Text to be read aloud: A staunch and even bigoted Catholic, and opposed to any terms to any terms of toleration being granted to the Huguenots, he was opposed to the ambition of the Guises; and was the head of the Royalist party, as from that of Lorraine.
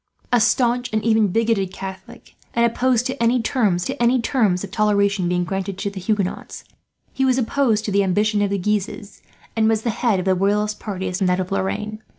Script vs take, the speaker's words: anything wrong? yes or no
no